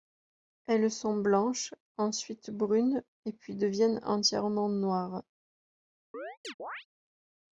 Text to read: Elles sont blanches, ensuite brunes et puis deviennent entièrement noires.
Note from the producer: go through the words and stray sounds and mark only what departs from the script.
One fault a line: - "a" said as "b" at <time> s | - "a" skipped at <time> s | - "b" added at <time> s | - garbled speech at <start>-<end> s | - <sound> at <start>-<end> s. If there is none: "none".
- chirp at 6.1-6.9 s